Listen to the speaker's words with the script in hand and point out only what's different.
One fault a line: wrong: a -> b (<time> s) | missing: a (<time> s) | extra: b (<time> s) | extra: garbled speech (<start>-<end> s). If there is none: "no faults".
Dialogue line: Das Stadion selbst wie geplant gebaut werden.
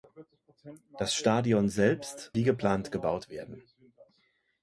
no faults